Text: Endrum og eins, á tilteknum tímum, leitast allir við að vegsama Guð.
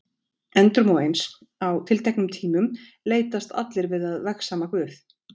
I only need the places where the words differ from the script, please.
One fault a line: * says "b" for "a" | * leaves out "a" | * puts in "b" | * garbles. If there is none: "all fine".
all fine